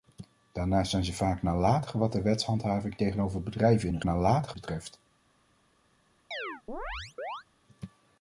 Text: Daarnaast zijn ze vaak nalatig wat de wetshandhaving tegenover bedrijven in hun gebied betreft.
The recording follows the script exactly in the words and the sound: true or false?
false